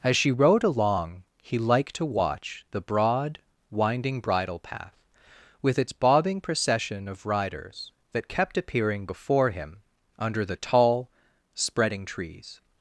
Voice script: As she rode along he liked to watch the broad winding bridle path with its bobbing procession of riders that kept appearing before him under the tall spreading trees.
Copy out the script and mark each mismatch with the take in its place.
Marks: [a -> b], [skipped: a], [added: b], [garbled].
As she rode along he liked to watch the broad winding bridle path with its bobbing procession of riders that kept appearing before him under the tall spreading trees.